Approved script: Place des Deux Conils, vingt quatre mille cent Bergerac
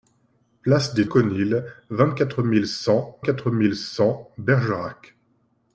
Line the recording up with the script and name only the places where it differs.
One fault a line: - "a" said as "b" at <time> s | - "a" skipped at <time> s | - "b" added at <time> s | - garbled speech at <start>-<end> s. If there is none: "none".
- "Deux" skipped at 1.1 s
- "quatre mille cent" added at 3.2 s